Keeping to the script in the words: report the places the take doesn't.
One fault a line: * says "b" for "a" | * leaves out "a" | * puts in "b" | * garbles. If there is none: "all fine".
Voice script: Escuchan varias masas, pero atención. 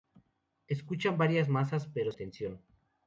all fine